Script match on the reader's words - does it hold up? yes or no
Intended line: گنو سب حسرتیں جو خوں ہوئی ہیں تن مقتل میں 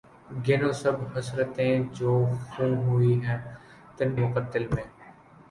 yes